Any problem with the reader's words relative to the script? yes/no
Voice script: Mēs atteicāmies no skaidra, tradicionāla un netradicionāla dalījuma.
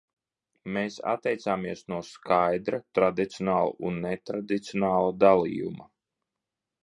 no